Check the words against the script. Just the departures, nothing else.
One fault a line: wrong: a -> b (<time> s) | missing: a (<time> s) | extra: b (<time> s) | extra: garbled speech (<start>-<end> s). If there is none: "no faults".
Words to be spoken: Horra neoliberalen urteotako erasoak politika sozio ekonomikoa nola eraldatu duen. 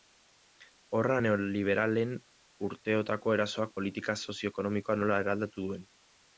no faults